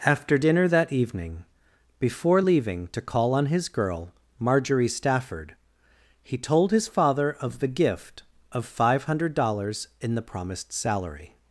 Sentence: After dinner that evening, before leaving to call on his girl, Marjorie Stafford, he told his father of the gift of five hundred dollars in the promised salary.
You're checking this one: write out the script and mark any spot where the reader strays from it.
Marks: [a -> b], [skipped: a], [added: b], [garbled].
After dinner that evening, before leaving to call on his girl, Marjorie Stafford, he told his father of the gift of five hundred dollars in the promised salary.